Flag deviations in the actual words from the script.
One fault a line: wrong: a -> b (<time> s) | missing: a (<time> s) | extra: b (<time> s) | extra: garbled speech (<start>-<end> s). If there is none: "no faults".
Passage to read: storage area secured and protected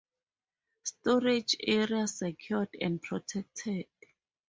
no faults